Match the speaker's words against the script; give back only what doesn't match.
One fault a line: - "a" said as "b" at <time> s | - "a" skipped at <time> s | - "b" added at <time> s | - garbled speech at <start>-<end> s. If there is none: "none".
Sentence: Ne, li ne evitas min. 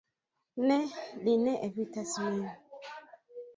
none